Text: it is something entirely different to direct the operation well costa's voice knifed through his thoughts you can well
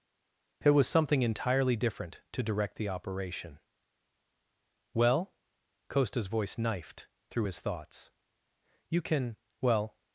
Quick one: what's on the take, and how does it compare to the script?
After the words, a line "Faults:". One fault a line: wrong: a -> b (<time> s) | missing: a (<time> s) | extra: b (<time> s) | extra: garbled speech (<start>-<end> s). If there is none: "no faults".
it was something entirely different to direct the operation well costa's voice knifed through his thoughts you can well
Faults:
wrong: is -> was (0.7 s)